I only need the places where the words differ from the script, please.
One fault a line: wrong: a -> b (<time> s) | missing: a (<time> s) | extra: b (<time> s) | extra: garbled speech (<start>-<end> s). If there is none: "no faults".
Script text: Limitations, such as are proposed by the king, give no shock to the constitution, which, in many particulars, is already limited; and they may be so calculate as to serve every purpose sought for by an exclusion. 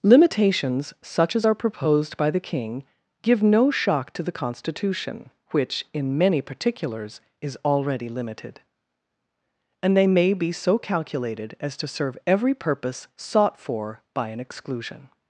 wrong: calculate -> calculated (10.8 s)